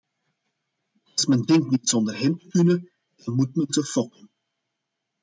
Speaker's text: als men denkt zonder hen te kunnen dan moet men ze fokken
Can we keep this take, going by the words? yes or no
no